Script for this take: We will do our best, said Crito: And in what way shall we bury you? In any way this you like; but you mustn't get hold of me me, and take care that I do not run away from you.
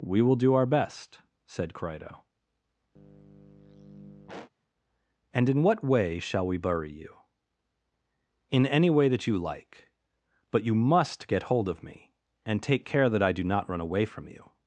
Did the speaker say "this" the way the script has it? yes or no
no